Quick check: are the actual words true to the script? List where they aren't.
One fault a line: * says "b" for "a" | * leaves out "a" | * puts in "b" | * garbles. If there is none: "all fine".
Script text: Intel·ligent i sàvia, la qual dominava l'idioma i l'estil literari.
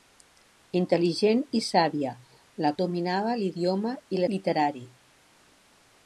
* leaves out "qual"
* leaves out "l'estil"